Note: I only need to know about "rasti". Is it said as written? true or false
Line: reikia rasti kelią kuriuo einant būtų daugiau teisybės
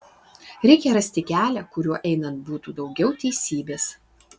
true